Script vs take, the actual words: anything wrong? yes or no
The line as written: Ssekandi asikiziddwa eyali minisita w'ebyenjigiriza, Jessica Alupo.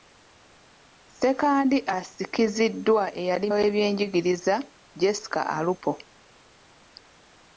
yes